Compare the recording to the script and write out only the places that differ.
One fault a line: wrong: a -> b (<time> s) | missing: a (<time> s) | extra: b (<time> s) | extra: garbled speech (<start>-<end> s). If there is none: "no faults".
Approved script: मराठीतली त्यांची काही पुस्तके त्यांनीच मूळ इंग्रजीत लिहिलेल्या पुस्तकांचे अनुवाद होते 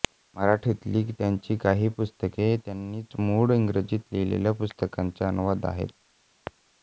wrong: होते -> आहेत (5.7 s)